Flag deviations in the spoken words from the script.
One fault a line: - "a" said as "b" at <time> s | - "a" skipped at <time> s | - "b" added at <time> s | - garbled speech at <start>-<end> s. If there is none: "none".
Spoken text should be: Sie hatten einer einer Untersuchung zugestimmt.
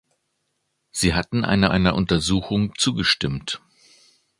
none